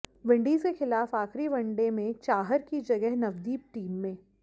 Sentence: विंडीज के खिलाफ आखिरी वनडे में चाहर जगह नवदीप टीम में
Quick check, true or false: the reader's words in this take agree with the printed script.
false